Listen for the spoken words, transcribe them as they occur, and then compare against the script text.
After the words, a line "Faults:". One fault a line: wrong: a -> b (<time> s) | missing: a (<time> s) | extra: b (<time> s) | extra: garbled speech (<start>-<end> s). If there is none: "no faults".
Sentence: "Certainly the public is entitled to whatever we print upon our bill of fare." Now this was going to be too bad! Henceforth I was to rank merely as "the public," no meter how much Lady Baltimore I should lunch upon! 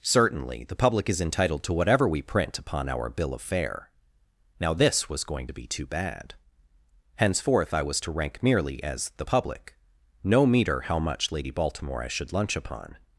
"Certainly the public is entitled to whatever we print upon our bill of fare." Now this was going to be too bad! Henceforth I was to rank merely as "the public," no meter how much Lady Baltimore I should lunch upon!
Faults:
no faults